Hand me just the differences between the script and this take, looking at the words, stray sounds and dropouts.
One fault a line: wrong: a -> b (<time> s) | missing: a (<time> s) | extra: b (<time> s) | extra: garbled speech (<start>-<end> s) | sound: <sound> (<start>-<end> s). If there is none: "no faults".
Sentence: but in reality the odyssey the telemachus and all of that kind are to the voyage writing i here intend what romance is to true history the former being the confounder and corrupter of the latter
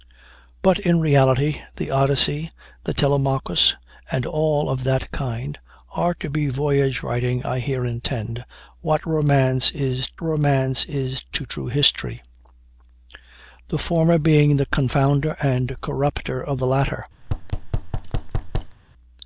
extra: romance is (10.2 s)
sound: thud (17.2-18.8 s)